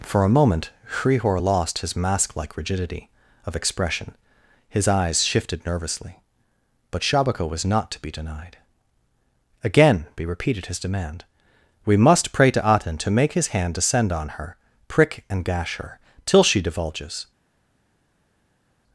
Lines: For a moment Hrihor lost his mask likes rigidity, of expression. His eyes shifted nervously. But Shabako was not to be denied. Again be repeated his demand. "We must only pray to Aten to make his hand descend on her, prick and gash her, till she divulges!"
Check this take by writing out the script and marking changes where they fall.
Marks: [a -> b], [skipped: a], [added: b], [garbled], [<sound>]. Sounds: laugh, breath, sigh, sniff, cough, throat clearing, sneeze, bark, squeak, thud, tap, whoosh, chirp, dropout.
For a moment Hrihor lost his mask [likes -> like] rigidity, of expression. His eyes shifted nervously. But Shabako was not to be denied. Again be repeated his demand. "We must [skipped: only] pray to Aten to make his hand descend on her, prick and gash her, till she divulges!"